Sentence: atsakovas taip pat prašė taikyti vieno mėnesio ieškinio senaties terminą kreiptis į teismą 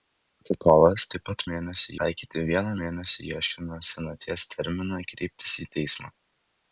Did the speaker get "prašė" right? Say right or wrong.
wrong